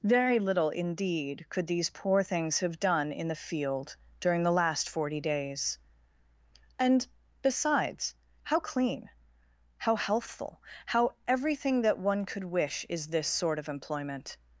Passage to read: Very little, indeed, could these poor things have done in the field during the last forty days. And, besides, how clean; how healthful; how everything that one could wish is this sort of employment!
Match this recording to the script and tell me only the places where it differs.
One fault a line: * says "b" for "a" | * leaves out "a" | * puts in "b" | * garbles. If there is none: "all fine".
all fine